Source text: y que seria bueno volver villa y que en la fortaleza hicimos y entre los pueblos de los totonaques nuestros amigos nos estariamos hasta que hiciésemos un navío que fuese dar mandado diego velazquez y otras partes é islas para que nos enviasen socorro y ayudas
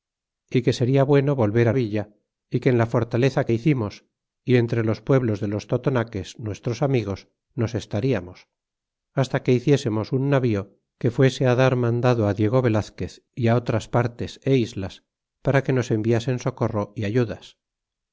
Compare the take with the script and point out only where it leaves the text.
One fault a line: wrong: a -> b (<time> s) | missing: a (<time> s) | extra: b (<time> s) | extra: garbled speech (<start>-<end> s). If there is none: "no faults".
no faults